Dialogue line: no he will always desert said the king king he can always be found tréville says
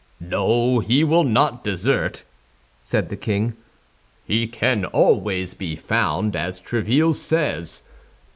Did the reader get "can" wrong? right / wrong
right